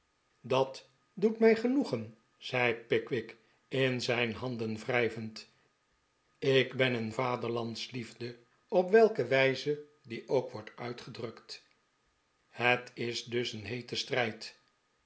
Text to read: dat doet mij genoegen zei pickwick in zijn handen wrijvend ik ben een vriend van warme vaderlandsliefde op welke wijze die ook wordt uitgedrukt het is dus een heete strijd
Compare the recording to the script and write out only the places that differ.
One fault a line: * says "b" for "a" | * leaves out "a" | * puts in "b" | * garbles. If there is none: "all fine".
* leaves out "vriend van warme"